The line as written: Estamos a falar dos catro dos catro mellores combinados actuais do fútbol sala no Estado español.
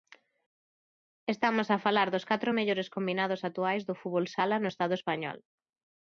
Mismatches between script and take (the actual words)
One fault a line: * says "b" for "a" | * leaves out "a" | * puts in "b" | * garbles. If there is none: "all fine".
* leaves out "dos catro"